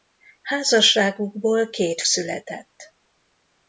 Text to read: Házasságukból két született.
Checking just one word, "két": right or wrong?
right